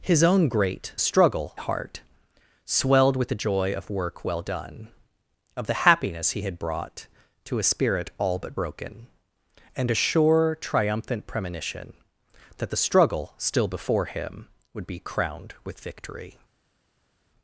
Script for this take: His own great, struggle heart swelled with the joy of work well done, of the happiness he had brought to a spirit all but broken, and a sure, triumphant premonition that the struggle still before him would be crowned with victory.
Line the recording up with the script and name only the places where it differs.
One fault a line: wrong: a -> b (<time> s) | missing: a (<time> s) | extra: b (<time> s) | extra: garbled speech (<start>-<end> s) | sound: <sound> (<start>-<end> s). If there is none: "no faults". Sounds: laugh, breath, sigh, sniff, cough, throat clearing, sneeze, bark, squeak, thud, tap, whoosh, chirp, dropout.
no faults